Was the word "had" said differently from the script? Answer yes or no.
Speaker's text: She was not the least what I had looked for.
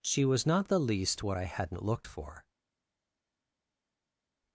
yes